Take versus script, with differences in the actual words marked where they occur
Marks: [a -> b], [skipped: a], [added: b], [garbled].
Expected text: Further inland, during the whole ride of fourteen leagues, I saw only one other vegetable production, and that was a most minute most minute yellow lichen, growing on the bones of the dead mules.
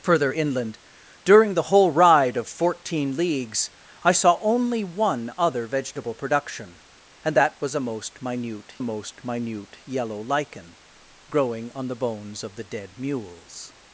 Further inland, during the whole ride of fourteen leagues, I saw only one other vegetable production, and that was a most minute most minute yellow lichen, growing on the bones of the dead mules.